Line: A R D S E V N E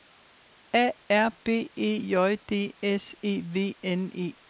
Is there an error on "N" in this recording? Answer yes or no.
no